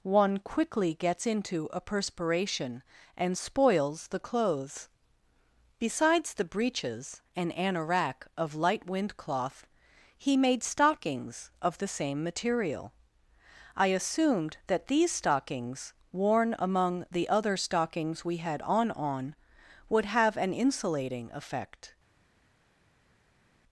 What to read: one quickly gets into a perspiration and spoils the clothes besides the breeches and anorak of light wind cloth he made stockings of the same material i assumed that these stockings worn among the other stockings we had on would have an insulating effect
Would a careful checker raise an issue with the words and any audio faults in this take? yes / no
yes